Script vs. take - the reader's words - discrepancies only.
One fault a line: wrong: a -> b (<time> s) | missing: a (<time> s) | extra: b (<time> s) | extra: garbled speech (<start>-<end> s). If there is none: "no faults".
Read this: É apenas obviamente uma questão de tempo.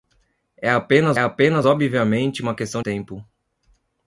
extra: apenas (1.2 s)
missing: de (2.8 s)